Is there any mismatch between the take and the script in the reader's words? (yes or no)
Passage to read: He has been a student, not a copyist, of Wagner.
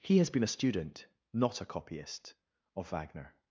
no